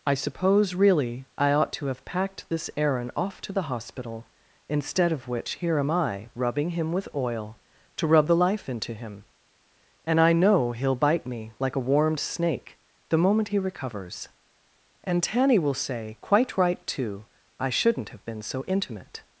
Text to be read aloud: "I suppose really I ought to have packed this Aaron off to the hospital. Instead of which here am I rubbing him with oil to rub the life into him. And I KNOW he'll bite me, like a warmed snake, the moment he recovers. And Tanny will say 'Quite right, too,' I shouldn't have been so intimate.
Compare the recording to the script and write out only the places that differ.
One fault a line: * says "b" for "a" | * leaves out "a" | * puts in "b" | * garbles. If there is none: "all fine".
all fine